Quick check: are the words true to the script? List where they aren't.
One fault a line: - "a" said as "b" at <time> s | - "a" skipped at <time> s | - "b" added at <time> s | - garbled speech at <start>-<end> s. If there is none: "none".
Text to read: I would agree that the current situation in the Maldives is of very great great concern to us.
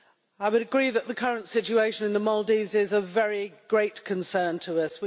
- "great" skipped at 4.0 s